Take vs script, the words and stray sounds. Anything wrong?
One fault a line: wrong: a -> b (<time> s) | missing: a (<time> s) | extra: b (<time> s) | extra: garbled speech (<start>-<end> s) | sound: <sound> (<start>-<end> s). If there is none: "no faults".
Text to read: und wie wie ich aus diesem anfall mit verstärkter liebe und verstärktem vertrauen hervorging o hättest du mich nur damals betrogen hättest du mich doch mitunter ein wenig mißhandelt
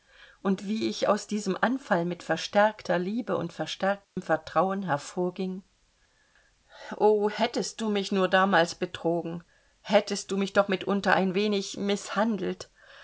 missing: wie (0.9 s)
sound: dropout (4.0-4.2 s)